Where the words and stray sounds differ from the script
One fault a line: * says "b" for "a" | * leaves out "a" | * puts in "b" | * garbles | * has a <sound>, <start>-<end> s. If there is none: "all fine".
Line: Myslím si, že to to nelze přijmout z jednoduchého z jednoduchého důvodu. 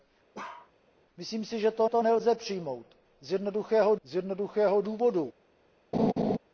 * has a bark, 0.3-0.7 s
* has a laugh, 5.9-6.4 s